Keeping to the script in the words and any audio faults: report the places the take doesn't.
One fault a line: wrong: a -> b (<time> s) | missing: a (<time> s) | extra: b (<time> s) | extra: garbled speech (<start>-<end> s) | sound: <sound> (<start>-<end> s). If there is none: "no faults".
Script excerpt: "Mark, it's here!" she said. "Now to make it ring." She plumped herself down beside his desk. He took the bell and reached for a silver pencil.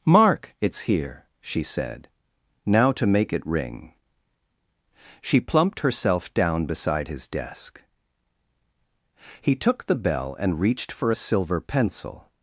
no faults